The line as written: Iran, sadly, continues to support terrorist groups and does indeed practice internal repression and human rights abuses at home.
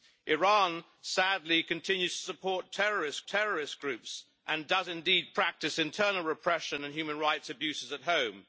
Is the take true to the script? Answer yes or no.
no